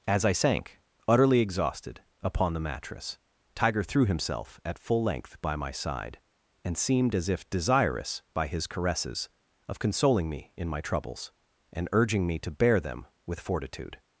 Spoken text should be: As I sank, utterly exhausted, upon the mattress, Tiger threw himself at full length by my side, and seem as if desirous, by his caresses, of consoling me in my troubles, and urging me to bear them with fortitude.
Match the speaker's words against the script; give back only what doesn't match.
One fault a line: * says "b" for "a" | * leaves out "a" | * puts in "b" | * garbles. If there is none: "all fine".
* says "seemed" for "seem"